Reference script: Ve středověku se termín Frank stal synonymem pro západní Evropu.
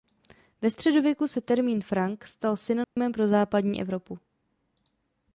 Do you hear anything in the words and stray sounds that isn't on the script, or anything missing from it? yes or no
yes